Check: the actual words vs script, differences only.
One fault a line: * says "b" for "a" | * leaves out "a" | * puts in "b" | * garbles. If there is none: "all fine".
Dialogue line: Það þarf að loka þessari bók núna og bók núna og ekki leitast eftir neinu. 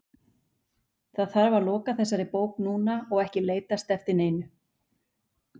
* leaves out "bók núna og"